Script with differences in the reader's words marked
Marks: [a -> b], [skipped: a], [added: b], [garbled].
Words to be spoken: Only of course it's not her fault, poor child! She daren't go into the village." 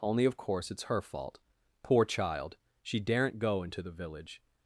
Only of course it's [skipped: not] her fault, poor child! She daren't go into the village."